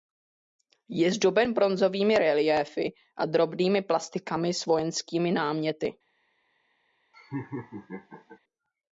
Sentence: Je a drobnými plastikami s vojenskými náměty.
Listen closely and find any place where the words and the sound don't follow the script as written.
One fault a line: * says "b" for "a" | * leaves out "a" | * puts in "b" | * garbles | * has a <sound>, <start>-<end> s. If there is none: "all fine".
* puts in "zdoben bronzovými reliéfy"
* has a laugh, 7.1-8.4 s